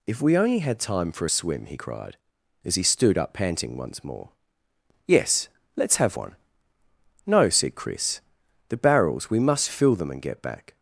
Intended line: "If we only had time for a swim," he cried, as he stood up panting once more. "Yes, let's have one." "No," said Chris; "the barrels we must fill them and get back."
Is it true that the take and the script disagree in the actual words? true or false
false